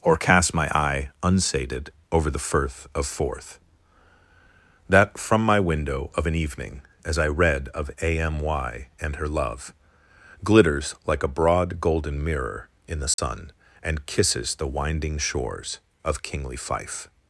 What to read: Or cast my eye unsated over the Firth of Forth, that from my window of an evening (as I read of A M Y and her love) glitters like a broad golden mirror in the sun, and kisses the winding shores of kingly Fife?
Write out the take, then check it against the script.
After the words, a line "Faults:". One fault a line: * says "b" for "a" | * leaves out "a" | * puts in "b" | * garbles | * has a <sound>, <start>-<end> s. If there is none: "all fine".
Or cast my eye unsated over the Firth of Forth, that from my window of an evening (as I read of A M Y and her love) glitters like a broad golden mirror in the sun, and kisses the winding shores of kingly Fife?
Faults:
* has a dropout, 13.1-13.2 s